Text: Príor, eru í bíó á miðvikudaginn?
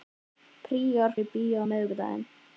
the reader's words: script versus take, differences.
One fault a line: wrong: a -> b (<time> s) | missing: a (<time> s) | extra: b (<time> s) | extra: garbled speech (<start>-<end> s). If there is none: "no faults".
no faults